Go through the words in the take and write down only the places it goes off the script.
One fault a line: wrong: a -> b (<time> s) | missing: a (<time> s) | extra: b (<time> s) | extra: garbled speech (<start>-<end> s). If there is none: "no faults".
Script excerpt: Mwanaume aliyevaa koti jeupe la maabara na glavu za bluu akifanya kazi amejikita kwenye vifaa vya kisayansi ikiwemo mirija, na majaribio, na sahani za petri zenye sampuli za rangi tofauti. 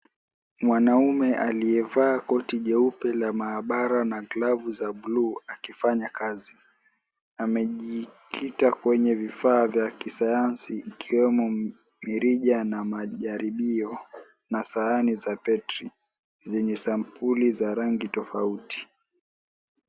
no faults